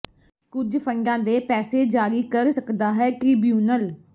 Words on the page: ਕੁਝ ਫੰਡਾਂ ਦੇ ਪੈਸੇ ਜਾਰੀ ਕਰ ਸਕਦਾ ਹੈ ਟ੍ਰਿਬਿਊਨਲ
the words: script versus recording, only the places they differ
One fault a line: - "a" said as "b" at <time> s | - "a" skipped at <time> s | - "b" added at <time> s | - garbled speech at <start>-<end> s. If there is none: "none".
none